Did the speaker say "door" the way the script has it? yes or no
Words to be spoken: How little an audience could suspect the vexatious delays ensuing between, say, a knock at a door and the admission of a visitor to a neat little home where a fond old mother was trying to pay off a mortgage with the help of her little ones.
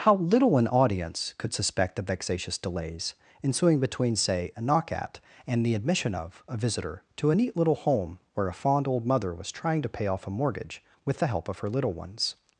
no